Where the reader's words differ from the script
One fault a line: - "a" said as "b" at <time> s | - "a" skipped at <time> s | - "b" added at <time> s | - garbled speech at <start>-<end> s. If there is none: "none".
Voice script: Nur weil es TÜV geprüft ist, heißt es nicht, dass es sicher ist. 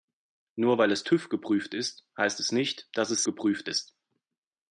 - "sicher" said as "geprüft" at 3.2 s